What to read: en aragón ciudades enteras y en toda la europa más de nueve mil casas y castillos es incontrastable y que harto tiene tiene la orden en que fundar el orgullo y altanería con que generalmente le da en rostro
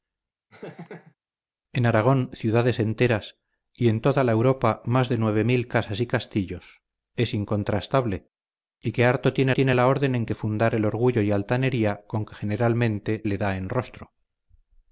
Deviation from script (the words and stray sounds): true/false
true